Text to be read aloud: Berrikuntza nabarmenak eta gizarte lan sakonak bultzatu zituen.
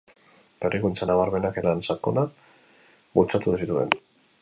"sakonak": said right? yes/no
yes